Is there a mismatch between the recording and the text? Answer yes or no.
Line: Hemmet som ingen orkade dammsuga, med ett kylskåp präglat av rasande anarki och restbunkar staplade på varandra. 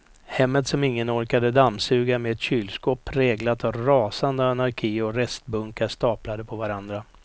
no